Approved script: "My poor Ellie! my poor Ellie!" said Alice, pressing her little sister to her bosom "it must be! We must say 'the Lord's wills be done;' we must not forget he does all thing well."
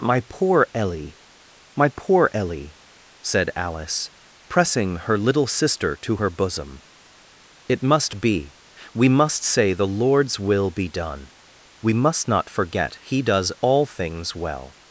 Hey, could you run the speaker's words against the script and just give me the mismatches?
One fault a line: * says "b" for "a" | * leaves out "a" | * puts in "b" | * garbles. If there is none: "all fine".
* says "will" for "wills"
* says "things" for "thing"